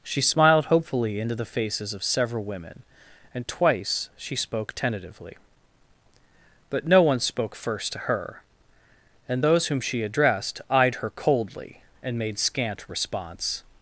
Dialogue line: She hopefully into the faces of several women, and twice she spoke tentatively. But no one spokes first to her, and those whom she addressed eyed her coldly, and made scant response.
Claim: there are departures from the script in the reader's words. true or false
true